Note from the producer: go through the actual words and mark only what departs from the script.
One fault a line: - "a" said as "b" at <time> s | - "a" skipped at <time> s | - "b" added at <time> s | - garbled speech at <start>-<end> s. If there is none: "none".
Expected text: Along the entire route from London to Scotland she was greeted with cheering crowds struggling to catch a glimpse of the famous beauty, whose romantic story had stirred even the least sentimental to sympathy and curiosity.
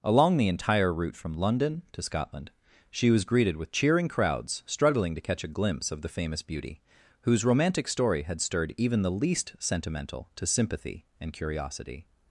none